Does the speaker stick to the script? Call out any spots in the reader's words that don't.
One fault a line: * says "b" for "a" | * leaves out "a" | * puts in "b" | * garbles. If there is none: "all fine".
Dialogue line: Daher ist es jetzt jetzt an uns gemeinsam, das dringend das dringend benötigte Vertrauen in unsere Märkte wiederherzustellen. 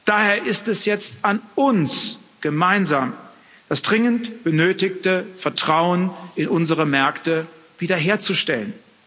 * leaves out "jetzt"
* leaves out "das dringend"